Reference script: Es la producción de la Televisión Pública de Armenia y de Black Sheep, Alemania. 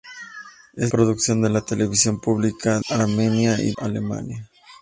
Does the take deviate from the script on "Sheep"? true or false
true